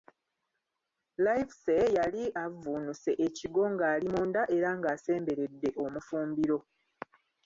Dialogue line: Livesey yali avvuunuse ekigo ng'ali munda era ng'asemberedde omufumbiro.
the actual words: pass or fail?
pass